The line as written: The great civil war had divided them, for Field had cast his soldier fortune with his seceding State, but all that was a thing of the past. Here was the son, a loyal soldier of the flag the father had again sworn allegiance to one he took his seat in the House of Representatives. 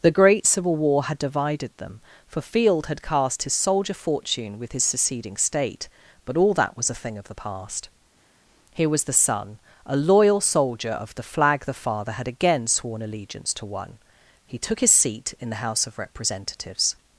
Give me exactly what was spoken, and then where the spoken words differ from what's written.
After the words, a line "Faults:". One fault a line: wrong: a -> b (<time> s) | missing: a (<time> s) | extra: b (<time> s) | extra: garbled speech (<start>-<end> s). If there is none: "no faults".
The great civil war had divided them, for Field had cast his soldier fortune with his seceding State, but all that was a thing of the past. Here was the son, a loyal soldier of the flag the father had again sworn allegiance to one he took his seat in the House of Representatives.
Faults:
no faults